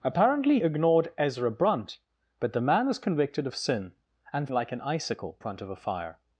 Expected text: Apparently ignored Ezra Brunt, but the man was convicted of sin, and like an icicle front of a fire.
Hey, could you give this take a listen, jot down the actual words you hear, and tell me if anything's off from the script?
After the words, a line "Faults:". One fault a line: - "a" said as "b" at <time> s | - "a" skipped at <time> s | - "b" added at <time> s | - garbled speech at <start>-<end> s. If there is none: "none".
Apparently ignored Ezra Brunt, but the man was convicted of sin, and like an icicle front of a fire.
Faults:
none